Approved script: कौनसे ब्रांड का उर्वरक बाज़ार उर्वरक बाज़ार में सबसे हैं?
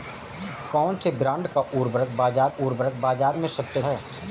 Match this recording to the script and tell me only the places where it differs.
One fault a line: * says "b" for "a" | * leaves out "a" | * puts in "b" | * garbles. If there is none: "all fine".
all fine